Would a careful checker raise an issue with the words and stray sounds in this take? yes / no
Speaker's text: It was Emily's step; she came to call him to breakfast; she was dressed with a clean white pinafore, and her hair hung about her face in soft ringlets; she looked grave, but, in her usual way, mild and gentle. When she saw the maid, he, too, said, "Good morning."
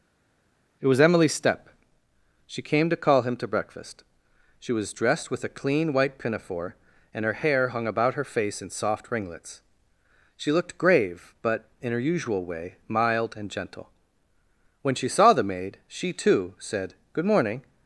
yes